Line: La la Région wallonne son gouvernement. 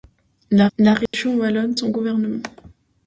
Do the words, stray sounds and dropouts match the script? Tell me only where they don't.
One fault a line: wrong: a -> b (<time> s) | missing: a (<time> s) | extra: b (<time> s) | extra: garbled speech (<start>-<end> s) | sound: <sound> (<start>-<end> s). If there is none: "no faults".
sound: dropout (1.1-1.1 s)